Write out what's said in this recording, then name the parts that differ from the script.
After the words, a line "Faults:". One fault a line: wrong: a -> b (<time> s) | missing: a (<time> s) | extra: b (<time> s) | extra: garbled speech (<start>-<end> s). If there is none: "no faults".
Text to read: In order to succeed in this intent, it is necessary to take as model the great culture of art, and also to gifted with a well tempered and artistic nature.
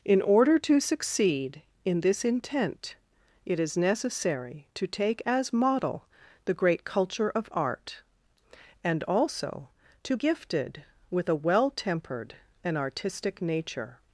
In order to succeed in this intent, it is necessary to take as model the great culture of art, and also to gifted with a well tempered and artistic nature.
Faults:
no faults